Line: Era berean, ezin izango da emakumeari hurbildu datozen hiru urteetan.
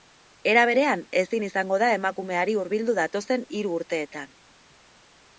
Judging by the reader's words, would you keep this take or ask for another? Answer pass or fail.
pass